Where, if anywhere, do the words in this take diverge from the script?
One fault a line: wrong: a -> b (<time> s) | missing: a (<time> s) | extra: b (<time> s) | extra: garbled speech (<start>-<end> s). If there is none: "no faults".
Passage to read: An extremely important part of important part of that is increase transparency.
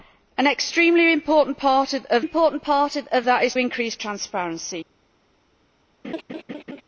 no faults